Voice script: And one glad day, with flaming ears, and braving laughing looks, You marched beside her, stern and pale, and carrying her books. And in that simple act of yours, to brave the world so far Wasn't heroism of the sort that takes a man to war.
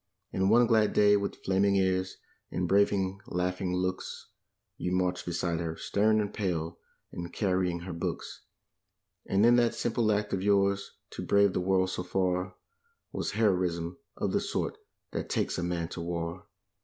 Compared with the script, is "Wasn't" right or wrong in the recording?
wrong